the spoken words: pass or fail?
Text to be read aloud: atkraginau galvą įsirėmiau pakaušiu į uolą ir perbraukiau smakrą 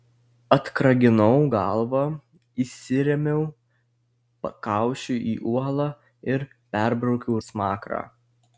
pass